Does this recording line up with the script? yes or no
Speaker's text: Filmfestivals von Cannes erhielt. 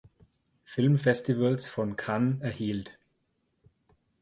yes